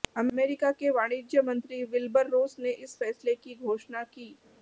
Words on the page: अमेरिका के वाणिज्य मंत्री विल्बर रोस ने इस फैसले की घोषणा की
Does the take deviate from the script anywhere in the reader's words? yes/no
no